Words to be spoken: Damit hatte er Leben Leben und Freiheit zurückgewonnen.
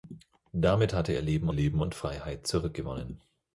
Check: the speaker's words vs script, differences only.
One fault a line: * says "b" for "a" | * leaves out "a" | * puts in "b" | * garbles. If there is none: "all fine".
all fine